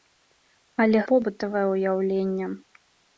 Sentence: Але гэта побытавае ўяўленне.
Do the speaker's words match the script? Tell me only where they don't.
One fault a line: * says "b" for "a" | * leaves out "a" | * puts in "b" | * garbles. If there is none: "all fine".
* leaves out "гэта"